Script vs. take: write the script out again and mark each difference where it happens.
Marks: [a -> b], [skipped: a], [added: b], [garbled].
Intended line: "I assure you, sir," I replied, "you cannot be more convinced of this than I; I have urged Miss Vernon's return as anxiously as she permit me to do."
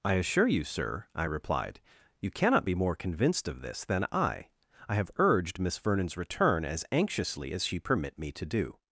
"I assure you, sir," I replied, "you cannot be more convinced of this than I; I have urged Miss Vernon's return as anxiously as she permit me to do."